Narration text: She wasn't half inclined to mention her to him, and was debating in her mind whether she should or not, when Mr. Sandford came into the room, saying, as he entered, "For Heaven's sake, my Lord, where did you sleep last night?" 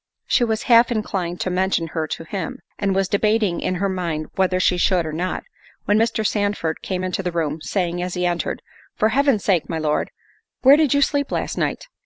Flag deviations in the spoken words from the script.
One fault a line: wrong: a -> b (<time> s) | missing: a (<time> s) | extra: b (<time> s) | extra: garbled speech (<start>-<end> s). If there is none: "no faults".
wrong: wasn't -> was (0.4 s)